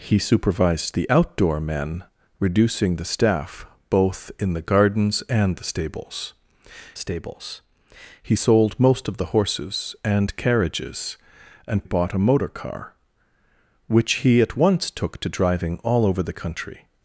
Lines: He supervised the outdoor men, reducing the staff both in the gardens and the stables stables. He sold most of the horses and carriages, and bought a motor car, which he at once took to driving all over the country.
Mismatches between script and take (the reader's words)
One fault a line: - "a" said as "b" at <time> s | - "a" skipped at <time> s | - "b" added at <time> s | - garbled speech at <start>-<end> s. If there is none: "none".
none